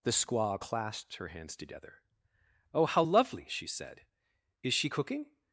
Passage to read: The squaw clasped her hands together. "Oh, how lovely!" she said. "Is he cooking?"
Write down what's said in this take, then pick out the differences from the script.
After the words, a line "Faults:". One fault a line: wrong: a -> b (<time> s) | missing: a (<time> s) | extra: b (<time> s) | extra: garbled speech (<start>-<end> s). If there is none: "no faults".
The squaw clasped her hands together. "Oh, how lovely!" she said. "Is she cooking?"
Faults:
wrong: he -> she (4.7 s)